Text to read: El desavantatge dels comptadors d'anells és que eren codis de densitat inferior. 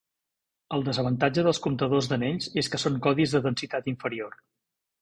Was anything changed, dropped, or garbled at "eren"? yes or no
yes